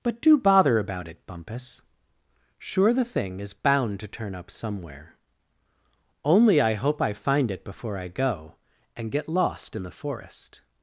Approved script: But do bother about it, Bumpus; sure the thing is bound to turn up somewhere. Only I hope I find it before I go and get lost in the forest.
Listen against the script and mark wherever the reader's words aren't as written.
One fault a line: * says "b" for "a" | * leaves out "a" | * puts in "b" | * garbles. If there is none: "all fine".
all fine